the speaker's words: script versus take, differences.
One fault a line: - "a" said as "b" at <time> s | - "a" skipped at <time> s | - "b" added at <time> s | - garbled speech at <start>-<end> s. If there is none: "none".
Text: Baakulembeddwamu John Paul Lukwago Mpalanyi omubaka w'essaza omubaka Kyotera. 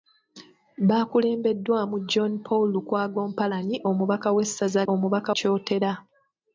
none